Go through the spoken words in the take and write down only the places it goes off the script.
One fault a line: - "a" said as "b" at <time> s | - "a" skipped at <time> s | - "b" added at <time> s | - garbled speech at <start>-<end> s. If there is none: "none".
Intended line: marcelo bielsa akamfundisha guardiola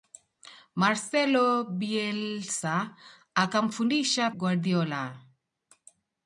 none